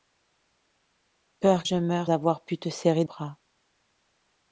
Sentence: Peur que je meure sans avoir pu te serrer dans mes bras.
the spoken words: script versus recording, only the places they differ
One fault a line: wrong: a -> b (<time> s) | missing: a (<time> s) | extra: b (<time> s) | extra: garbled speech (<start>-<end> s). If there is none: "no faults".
missing: que (1.6 s)
missing: sans (2.1 s)
missing: dans mes (3.0 s)